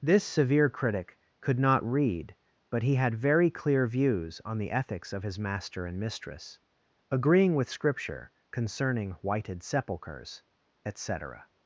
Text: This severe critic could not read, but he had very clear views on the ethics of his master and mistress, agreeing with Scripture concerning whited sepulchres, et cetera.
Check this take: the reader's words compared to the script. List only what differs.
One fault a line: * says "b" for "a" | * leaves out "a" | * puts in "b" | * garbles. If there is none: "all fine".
all fine